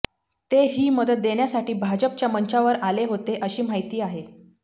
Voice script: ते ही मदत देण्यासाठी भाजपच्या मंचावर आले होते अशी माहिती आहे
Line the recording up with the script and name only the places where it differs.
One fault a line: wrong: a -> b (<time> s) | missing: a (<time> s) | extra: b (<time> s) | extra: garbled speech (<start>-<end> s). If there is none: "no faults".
no faults